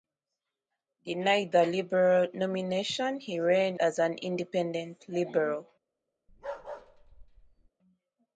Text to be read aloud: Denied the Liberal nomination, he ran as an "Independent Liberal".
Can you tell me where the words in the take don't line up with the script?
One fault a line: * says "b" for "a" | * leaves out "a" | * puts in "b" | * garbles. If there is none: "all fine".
all fine